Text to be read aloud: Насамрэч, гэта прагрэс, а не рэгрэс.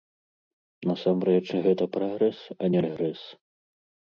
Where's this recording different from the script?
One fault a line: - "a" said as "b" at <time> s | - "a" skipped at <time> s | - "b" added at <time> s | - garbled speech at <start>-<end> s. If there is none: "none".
none